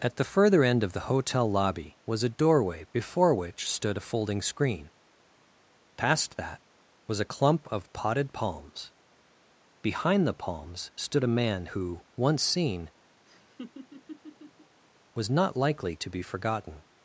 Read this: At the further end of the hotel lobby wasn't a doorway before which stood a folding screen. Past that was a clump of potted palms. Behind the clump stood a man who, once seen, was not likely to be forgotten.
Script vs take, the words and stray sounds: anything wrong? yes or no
yes